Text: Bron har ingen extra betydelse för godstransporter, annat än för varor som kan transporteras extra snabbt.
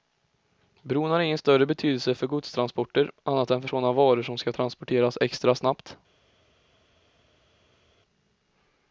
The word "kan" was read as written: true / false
false